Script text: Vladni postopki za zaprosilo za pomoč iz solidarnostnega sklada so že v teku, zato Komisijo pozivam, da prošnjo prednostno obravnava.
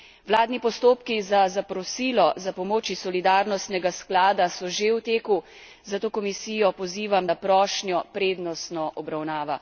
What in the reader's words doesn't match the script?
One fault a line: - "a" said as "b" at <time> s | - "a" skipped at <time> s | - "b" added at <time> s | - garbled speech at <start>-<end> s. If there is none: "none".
none